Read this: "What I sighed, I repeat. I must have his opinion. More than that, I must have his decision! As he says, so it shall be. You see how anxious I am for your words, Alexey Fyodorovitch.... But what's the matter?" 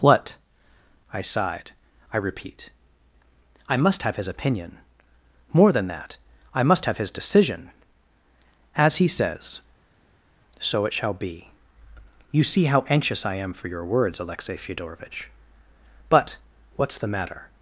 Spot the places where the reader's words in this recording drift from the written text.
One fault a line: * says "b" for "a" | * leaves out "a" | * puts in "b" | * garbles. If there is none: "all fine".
all fine